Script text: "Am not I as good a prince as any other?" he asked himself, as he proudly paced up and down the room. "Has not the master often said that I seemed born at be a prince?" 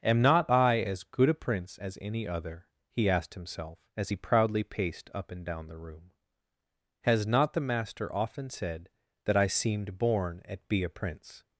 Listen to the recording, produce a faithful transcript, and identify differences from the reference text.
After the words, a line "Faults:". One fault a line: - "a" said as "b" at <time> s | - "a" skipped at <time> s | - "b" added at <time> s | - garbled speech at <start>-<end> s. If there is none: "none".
"Am not I as good a prince as any other?" he asked himself, as he proudly paced up and down the room. "Has not the master often said that I seemed born at be a prince?"
Faults:
none